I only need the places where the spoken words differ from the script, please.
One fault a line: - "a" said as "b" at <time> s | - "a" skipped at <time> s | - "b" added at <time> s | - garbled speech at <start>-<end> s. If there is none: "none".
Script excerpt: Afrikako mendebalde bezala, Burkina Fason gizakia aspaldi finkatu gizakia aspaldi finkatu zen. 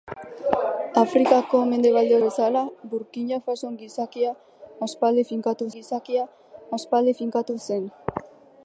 none